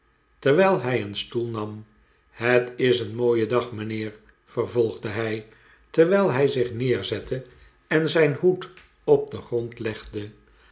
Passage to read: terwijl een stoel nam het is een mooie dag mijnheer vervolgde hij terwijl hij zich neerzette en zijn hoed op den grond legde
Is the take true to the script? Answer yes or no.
no